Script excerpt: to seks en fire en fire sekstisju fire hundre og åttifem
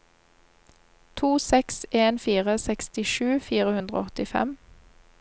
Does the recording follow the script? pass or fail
fail